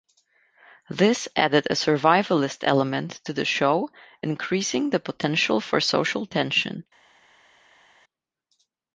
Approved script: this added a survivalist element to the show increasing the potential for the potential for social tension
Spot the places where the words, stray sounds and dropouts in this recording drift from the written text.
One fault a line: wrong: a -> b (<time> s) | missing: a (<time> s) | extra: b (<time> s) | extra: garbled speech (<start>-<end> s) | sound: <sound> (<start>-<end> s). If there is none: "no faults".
missing: the potential for (5.8 s)